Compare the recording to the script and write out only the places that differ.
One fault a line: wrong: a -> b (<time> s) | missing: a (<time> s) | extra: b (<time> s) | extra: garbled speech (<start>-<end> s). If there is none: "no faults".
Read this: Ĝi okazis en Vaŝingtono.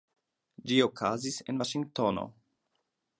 no faults